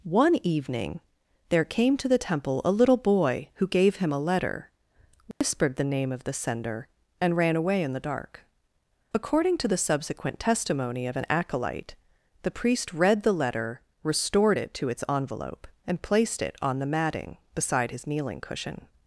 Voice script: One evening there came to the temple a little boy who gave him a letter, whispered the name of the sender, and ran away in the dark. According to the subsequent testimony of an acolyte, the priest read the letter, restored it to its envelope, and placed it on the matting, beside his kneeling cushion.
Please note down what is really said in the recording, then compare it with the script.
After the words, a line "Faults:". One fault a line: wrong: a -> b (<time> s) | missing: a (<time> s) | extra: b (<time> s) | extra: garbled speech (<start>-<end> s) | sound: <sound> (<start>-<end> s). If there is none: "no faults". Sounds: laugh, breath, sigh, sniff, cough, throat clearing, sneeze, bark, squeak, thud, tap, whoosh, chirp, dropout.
One evening there came to the temple a little boy who gave him a letter, whispered the name of the sender, and ran away in the dark. According to the subsequent testimony of an acolyte, the priest read the letter, restored it to its envelope, and placed it on the matting, beside his kneeling cushion.
Faults:
sound: dropout (5.3-5.4 s)